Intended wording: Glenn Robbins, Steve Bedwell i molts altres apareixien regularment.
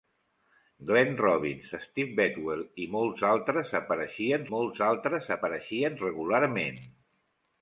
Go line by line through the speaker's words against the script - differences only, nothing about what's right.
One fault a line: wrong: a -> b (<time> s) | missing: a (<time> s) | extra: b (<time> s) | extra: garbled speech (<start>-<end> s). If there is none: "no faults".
extra: molts altres apareixien (4.5 s)